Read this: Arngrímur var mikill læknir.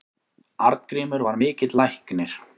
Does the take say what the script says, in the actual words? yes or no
yes